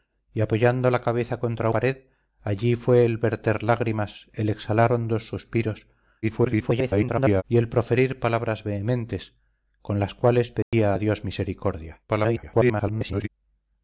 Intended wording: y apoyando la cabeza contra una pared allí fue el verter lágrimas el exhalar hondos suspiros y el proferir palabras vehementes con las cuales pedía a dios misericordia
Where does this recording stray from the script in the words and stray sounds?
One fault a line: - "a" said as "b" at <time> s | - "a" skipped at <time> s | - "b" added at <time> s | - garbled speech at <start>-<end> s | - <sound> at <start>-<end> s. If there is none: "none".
- "una" skipped at 1.7 s
- garbled speech at 6.2-7.4 s
- dropout at 10.6-10.7 s
- garbled speech at 12.1-13.3 s